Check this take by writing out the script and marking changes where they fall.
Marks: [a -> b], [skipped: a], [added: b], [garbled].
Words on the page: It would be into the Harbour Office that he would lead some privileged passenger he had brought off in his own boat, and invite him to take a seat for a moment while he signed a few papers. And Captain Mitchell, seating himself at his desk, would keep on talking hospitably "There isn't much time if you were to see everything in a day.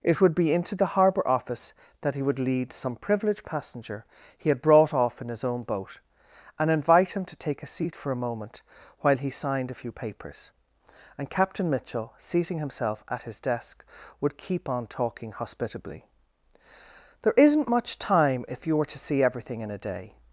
It would be into the Harbour Office that he would lead some privileged passenger he had brought off in his own boat, and invite him to take a seat for a moment while he signed a few papers. And Captain Mitchell, seating himself at his desk, would keep on talking hospitably "There isn't much time if you were to see everything in a day.